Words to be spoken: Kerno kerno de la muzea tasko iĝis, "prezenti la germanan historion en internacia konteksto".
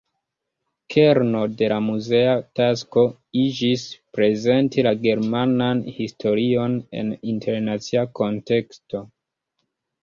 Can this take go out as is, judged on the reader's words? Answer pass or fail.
fail